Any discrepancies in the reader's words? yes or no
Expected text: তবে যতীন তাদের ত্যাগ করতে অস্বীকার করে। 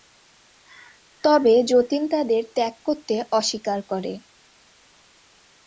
no